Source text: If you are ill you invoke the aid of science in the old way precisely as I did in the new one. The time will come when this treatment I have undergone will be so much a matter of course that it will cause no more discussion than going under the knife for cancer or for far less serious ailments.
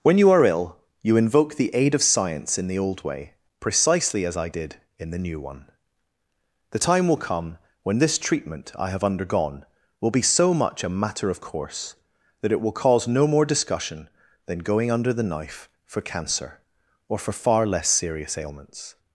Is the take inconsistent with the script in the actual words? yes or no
yes